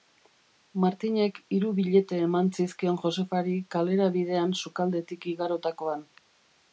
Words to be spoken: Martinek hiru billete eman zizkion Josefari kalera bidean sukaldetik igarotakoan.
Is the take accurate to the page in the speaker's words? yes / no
yes